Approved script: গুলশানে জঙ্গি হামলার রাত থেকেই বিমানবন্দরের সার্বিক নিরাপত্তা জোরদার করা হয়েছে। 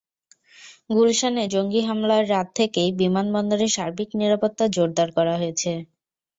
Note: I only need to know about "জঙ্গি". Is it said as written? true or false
true